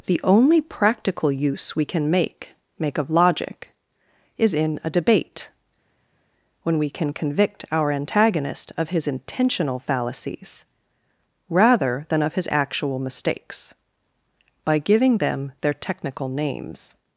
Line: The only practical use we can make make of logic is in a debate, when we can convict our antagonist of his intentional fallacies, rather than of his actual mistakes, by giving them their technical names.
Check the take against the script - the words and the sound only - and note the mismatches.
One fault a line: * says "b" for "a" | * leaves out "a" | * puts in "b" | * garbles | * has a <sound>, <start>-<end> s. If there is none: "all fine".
all fine